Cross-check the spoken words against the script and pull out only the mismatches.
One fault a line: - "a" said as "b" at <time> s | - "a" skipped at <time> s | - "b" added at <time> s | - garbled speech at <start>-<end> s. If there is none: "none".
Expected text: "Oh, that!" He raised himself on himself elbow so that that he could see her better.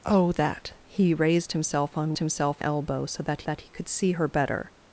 none